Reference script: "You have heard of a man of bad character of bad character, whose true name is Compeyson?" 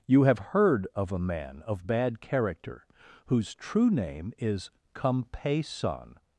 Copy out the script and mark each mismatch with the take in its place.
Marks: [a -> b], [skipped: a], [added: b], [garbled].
"You have heard of a man of bad character [skipped: of bad character,] whose true name is Compeyson?"